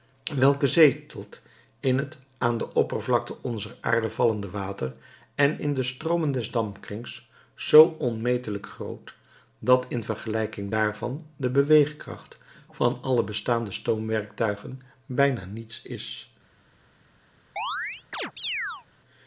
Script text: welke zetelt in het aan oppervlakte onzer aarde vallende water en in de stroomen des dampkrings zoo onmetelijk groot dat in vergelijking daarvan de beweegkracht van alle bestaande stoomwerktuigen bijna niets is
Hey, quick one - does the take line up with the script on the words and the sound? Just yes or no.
no